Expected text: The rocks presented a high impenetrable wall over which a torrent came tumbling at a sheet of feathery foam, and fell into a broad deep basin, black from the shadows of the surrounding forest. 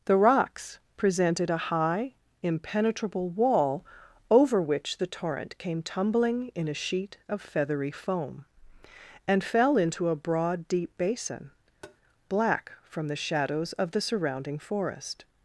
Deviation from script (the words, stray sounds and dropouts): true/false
true